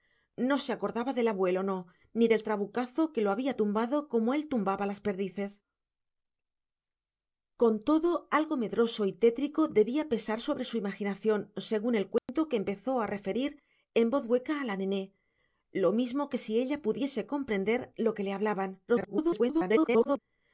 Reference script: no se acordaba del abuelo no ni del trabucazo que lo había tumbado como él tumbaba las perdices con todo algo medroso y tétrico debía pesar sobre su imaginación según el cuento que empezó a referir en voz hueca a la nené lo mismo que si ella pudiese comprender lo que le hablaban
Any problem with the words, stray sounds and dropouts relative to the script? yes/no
yes